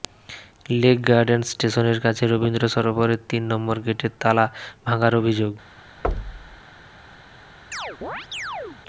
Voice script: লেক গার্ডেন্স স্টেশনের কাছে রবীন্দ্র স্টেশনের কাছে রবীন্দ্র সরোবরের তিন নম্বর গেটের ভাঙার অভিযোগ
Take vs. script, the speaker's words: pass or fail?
fail